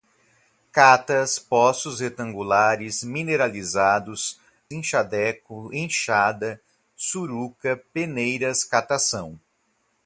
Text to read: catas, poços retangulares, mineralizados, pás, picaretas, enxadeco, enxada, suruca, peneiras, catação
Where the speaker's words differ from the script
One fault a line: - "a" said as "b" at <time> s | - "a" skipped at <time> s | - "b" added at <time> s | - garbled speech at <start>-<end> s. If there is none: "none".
- "pás picaretas" skipped at 4.4 s